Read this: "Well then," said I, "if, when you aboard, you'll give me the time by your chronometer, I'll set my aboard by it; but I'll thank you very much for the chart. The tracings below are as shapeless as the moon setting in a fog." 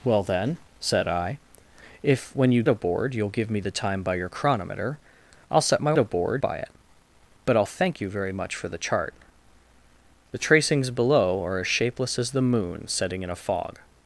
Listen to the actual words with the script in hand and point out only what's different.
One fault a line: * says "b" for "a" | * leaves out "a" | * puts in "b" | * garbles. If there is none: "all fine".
all fine